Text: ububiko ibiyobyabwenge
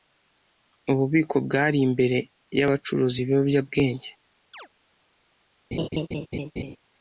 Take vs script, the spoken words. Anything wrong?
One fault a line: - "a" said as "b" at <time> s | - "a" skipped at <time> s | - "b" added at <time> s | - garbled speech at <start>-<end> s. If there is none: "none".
- "bwari imbere y'abacuruza" added at 1.4 s